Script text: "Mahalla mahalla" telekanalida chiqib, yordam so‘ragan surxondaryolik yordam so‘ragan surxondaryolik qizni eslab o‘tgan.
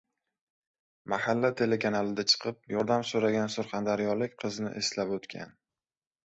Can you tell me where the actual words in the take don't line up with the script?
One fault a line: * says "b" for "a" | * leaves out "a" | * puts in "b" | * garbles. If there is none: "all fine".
* leaves out "mahalla"
* leaves out "yordam so‘ragan surxondaryolik"